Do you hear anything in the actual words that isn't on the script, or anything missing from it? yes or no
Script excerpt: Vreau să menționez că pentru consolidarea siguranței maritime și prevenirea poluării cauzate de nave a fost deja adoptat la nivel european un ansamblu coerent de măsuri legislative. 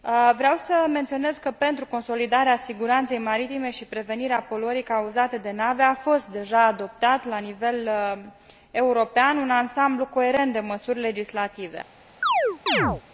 no